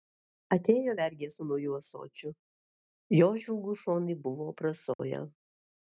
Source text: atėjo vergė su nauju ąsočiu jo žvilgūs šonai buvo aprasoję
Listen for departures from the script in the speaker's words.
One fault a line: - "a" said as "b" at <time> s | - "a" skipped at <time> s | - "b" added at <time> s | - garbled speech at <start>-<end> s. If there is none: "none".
none